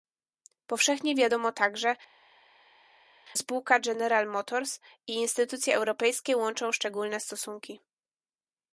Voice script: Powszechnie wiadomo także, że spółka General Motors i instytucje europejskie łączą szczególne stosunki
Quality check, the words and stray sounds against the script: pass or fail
fail